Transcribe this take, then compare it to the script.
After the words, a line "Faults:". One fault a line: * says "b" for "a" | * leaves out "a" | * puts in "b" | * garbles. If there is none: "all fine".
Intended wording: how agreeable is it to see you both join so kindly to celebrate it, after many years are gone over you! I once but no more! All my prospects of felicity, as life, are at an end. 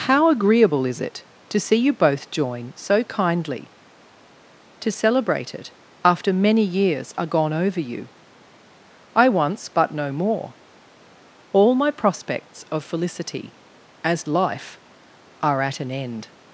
how agreeable is it to see you both join so kindly to celebrate it, after many years are gone over you! I once but no more! All my prospects of felicity, as life, are at an end.
Faults:
all fine